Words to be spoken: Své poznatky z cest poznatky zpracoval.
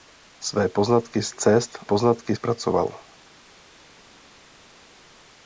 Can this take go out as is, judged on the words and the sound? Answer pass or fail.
pass